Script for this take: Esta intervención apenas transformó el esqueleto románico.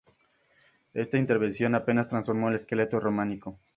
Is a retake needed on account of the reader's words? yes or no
no